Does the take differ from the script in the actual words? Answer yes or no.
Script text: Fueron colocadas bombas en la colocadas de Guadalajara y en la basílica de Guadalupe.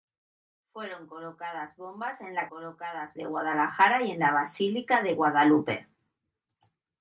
no